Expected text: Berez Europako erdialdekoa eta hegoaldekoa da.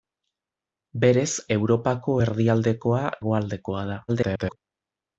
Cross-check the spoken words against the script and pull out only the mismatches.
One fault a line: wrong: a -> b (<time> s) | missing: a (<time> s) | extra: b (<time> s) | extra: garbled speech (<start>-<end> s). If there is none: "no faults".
missing: eta (3.0 s)
extra: garbled speech (4.1-4.6 s)